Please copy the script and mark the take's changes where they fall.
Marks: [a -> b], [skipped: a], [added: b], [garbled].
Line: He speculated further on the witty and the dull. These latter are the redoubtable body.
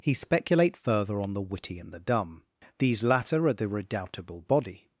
He [speculated -> speculate] further on the witty and the [dull. -> dumb] These latter are the redoubtable body.